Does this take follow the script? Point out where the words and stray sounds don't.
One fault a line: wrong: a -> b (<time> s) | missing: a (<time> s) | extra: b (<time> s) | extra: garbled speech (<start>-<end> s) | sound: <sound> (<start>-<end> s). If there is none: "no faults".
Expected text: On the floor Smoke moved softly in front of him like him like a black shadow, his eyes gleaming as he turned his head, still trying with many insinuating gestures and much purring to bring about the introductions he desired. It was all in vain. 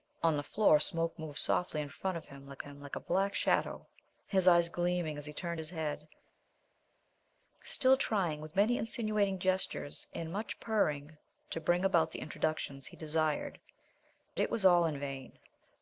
no faults